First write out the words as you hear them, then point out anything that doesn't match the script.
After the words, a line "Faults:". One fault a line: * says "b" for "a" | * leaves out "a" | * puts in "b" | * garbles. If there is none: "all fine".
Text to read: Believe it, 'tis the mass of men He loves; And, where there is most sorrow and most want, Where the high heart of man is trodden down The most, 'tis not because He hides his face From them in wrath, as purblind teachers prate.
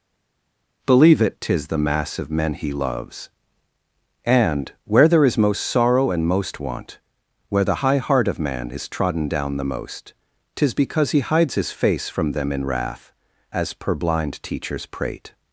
Believe it, 'tis the mass of men He loves; And, where there is most sorrow and most want, Where the high heart of man is trodden down The most, 'tis because He hides his face From them in wrath, as purblind teachers prate.
Faults:
* leaves out "not"